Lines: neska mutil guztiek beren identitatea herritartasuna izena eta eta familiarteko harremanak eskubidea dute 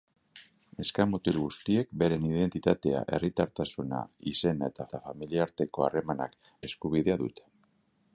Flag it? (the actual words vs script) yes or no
no